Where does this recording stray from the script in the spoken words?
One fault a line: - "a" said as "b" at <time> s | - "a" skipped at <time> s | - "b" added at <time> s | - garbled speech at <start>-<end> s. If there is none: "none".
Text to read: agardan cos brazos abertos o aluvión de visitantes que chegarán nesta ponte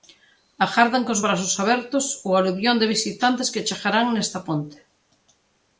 none